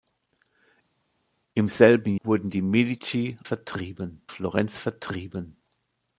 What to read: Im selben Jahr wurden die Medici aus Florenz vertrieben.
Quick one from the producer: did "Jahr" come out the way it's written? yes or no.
no